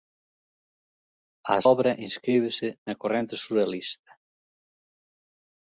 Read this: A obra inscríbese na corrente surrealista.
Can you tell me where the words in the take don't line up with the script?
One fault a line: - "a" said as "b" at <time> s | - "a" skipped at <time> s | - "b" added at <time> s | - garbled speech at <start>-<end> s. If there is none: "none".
none